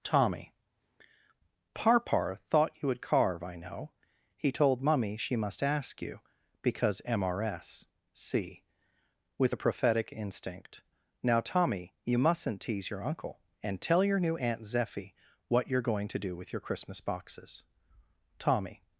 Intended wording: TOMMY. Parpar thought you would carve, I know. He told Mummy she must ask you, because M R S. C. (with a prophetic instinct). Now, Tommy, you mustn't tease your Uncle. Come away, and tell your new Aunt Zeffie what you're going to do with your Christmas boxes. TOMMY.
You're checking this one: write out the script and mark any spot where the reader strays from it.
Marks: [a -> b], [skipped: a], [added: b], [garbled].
TOMMY. Parpar thought you would carve, I know. He told Mummy she must ask you, because M R S. C. (with a prophetic instinct). Now, Tommy, you mustn't tease your Uncle. [skipped: Come away,] and tell your new Aunt Zeffie what you're going to do with your Christmas boxes. TOMMY.